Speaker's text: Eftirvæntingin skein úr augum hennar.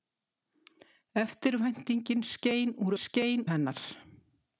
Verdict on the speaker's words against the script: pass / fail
fail